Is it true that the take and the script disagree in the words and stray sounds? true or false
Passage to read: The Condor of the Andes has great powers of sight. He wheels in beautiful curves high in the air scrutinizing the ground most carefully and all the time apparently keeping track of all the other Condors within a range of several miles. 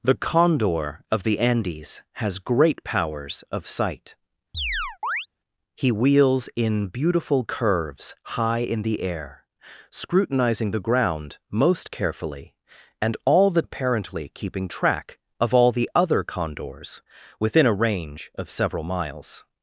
true